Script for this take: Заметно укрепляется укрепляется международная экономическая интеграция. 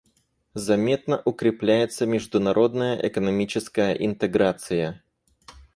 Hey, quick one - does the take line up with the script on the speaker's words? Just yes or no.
no